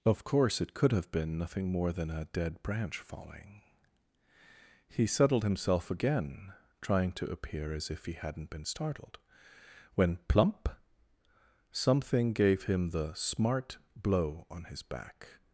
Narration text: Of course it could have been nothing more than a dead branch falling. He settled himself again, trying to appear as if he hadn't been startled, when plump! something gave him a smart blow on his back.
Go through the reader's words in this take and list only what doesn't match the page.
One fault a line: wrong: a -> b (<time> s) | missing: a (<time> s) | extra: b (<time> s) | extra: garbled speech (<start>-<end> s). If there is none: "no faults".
wrong: a -> the (12.9 s)